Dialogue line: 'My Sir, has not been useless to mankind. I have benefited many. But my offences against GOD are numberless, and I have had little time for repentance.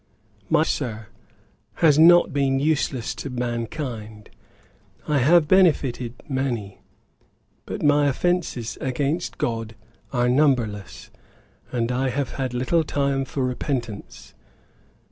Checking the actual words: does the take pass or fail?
pass